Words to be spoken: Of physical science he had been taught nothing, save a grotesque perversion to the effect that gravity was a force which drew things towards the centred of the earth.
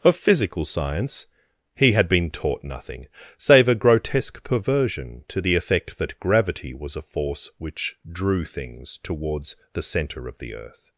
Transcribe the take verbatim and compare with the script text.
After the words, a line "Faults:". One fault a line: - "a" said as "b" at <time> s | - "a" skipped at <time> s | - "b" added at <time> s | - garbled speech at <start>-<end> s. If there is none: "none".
Of physical science he had been taught nothing, save a grotesque perversion to the effect that gravity was a force which drew things towards the centre of the earth.
Faults:
- "centred" said as "centre" at 9.8 s